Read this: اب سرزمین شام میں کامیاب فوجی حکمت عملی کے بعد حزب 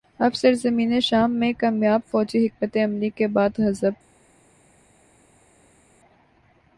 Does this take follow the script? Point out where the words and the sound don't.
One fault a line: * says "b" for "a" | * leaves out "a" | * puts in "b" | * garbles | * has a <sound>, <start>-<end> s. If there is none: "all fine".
all fine